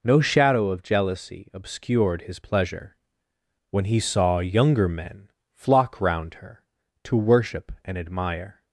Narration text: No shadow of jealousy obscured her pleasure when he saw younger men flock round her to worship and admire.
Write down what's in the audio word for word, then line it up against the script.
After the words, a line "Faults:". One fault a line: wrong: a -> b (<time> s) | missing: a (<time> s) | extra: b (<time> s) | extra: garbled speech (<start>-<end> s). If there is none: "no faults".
No shadow of jealousy obscured his pleasure when he saw younger men flock round her to worship and admire.
Faults:
wrong: her -> his (2.2 s)